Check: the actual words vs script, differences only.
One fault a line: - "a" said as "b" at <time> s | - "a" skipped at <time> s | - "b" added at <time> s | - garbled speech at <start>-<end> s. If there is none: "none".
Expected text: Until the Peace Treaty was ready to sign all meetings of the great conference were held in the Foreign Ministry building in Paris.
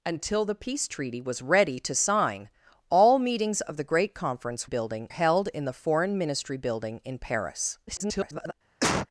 - "were" said as "building" at 4.6 s
- garbled speech at 7.9-8.5 s